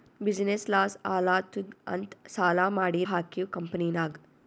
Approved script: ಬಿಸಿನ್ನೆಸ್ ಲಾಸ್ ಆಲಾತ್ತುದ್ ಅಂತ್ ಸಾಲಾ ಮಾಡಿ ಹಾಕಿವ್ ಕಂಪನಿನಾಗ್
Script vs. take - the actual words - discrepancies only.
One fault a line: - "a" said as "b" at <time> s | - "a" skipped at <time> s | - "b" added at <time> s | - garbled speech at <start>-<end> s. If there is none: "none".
none